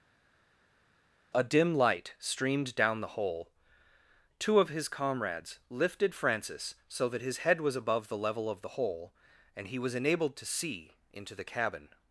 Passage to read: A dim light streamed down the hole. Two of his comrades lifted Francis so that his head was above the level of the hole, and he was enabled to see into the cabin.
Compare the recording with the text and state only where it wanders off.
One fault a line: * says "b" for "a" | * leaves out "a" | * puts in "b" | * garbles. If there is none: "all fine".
all fine